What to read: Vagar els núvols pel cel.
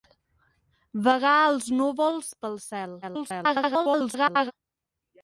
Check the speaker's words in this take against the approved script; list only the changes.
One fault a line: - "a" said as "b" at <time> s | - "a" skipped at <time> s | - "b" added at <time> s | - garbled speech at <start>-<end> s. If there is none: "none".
- garbled speech at 3.0-4.5 s